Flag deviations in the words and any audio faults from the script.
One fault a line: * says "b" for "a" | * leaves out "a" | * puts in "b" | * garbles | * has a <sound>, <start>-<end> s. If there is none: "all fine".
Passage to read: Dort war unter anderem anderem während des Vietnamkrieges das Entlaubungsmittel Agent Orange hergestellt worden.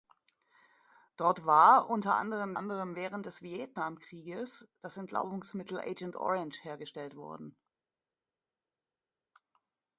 all fine